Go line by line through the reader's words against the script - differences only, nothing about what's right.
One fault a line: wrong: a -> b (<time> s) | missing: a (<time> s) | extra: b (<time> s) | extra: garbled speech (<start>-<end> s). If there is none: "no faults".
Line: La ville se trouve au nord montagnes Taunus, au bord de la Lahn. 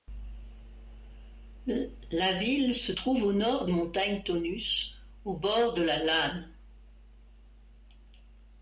no faults